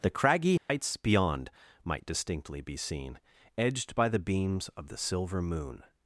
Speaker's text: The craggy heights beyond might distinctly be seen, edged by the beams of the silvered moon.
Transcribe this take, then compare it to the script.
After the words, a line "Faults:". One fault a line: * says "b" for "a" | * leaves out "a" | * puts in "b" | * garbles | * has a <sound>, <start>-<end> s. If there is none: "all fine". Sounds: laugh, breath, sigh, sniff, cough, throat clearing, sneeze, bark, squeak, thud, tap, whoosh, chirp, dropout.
The craggy heights beyond might distinctly be seen, edged by the beams of the silver moon.
Faults:
* has a dropout, 0.6-0.7 s
* says "silver" for "silvered"